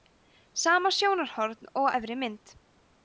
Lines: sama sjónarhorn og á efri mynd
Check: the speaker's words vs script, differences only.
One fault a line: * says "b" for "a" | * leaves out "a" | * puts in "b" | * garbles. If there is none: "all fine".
all fine